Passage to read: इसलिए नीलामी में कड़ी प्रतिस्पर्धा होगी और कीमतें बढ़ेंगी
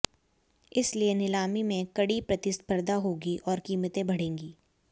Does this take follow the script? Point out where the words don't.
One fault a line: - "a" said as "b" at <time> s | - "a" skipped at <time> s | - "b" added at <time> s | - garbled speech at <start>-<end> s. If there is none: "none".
none